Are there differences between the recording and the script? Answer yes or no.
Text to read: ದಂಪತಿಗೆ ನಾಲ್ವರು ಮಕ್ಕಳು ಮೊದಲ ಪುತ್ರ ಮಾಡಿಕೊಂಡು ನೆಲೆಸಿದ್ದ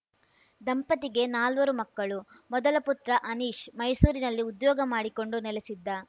yes